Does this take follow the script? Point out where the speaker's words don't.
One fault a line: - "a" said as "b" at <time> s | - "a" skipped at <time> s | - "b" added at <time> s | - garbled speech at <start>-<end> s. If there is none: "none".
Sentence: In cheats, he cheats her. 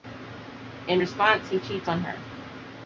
- "cheats" said as "response" at 1.0 s
- "on" added at 1.9 s